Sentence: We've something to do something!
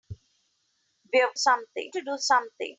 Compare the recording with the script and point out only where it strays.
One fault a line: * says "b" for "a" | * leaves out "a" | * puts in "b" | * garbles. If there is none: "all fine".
all fine